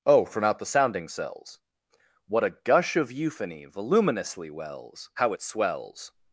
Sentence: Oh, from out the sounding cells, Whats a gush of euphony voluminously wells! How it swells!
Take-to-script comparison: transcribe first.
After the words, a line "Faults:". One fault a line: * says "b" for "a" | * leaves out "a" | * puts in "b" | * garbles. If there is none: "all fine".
Oh, from out the sounding cells, What a gush of euphony voluminously wells! How it swells!
Faults:
* says "What" for "Whats"